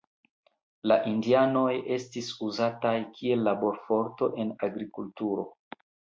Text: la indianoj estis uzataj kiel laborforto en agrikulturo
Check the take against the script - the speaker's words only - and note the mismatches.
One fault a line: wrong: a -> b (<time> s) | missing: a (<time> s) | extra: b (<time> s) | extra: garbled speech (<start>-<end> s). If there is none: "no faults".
no faults